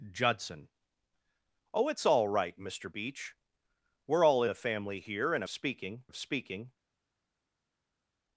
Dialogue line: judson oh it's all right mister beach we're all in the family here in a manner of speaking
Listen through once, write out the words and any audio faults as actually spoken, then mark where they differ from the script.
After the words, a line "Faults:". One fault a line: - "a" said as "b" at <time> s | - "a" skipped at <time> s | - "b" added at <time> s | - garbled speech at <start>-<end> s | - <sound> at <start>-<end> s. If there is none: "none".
judson oh it's all right mister beach we're all the family here in a speaking of speaking
Faults:
- "in" skipped at 4.4 s
- "manner" said as "speaking" at 5.5 s